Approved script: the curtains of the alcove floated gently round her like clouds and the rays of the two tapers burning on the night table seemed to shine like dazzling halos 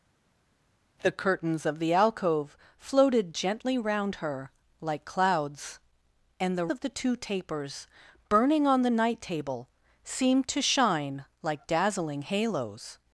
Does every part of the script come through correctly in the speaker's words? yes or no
no